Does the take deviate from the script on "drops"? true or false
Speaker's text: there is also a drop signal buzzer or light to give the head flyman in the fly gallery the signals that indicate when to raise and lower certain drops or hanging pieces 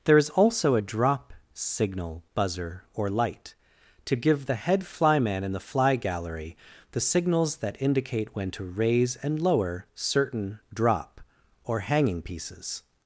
true